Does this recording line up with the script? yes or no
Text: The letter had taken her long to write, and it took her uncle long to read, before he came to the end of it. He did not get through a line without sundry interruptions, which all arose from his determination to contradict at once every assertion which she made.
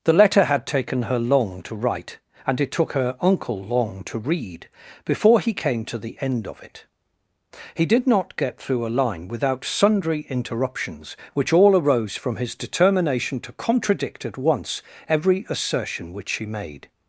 yes